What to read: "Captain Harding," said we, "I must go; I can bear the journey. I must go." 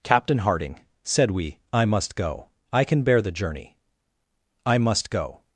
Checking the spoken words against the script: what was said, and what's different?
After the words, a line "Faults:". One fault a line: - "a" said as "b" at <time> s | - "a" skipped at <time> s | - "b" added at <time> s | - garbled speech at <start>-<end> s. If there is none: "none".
"Captain Harding," said we, "I must go; I can bear the journey. I must go."
Faults:
none